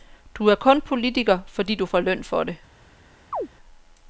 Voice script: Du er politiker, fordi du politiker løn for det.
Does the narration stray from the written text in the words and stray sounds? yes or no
yes